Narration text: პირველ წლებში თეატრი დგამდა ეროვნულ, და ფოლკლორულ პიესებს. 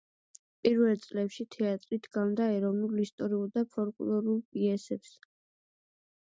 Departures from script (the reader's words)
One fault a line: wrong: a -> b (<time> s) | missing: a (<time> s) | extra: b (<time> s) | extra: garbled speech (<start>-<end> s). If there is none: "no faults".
extra: ისტორიულ (3.0 s)